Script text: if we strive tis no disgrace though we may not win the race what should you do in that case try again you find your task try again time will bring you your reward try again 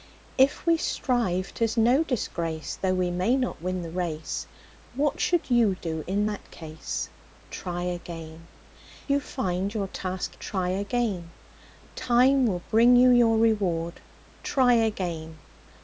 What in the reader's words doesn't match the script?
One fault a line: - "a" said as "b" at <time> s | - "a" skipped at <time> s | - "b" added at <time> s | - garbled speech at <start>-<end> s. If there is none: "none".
none